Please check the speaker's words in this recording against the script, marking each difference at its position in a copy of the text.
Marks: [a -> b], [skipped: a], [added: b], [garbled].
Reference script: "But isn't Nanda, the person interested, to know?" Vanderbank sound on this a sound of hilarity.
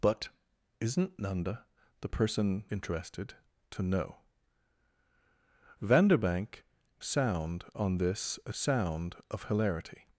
"But isn't Nanda, the person interested, to know?" Vanderbank sound on this a sound of hilarity.